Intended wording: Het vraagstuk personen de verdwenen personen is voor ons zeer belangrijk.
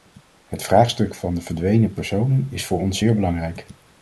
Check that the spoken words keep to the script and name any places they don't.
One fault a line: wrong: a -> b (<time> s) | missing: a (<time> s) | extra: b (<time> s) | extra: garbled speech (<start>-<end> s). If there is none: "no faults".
wrong: personen -> van (1.1 s)